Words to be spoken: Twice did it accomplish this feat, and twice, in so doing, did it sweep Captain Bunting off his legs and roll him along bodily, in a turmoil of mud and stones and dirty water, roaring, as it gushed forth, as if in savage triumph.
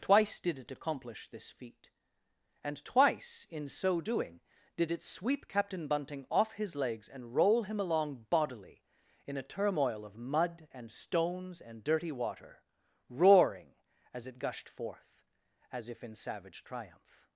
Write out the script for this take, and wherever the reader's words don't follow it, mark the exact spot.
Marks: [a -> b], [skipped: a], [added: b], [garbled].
Twice did it accomplish this feat, and twice, in so doing, did it sweep Captain Bunting off his legs and roll him along bodily, in a turmoil of mud and stones and dirty water, roaring, as it gushed forth, as if in savage triumph.